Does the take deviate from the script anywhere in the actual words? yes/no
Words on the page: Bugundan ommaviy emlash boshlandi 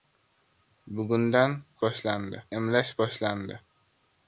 yes